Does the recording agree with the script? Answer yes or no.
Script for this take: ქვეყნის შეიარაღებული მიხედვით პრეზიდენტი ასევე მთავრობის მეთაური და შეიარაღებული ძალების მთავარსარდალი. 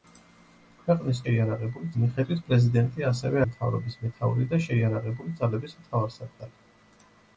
yes